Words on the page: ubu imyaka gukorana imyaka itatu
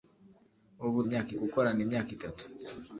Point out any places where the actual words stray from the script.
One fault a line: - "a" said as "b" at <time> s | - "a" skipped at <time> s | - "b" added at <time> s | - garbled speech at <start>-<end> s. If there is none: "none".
none